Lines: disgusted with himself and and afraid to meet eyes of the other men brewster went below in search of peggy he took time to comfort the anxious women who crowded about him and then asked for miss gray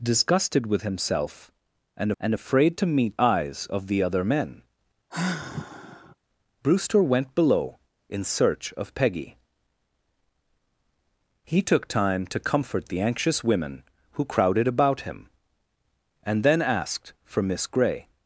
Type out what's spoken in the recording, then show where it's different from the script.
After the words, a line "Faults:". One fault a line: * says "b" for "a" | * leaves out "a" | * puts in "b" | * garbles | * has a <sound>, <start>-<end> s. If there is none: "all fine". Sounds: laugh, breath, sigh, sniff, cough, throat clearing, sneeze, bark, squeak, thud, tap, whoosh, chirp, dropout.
disgusted with himself and and afraid to meet eyes of the other men brewster went below in search of peggy he took time to comfort the anxious women who crowded about him and then asked for miss gray
Faults:
* has a sigh, 5.1-6.2 s